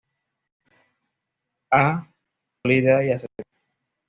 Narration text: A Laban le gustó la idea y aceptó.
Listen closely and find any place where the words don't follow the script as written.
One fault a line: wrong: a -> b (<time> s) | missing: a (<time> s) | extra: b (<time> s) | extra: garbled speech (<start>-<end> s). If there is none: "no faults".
missing: Laban le gustó (2.1 s)